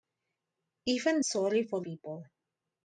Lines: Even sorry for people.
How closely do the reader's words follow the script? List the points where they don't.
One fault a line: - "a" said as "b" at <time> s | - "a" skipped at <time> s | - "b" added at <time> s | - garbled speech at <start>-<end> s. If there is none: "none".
none